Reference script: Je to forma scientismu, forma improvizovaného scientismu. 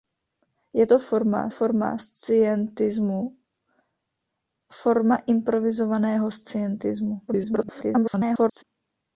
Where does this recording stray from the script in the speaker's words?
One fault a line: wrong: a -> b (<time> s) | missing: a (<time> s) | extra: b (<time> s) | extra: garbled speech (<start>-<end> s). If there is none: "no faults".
extra: forma (1.5 s)
extra: garbled speech (7.3-8.6 s)